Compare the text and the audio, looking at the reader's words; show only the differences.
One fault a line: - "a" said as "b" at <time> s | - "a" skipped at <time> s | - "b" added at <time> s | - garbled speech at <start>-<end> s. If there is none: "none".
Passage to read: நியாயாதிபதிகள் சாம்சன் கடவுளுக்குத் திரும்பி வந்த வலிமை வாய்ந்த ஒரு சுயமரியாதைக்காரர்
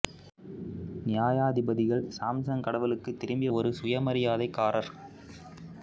- "வந்த வலிமை வாய்ந்த" skipped at 3.5 s